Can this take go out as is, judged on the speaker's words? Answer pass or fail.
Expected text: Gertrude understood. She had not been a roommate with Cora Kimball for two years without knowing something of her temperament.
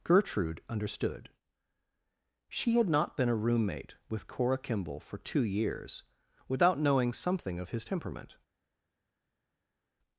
fail